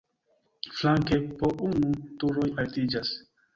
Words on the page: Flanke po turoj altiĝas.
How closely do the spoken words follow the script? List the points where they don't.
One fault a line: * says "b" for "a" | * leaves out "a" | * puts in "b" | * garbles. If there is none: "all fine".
* puts in "unu"